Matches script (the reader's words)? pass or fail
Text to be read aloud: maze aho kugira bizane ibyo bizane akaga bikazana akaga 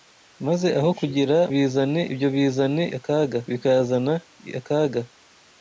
pass